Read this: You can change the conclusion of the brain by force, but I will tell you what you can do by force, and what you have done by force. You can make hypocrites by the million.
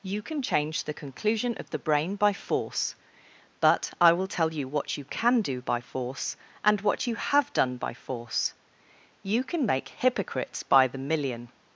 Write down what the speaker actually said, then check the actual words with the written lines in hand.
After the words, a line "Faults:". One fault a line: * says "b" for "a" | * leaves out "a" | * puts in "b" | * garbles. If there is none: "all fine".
You can change the conclusion of the brain by force, but I will tell you what you can do by force, and what you have done by force. You can make hypocrites by the million.
Faults:
all fine